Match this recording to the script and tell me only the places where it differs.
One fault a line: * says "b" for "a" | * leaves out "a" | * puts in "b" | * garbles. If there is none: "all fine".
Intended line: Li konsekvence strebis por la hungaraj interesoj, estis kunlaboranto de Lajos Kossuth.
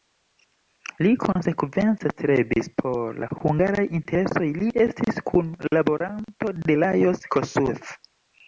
* puts in "li"